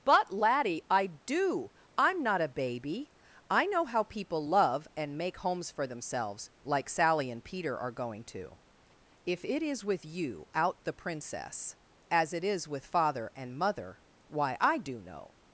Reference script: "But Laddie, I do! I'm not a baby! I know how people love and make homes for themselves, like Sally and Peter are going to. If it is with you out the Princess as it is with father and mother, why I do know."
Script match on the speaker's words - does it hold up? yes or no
yes